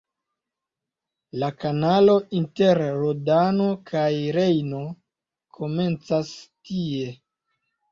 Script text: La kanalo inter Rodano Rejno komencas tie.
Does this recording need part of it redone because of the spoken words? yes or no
yes